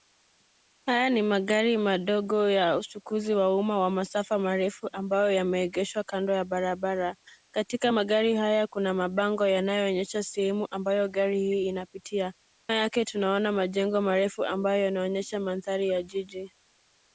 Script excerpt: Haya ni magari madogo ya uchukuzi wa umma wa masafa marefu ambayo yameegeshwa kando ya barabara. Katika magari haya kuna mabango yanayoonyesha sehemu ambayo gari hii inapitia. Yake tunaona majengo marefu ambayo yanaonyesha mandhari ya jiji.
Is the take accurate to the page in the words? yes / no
yes